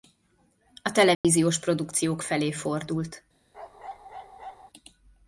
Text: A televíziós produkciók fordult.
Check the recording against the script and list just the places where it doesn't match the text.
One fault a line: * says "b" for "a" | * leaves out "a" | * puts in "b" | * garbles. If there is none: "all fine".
* puts in "felé"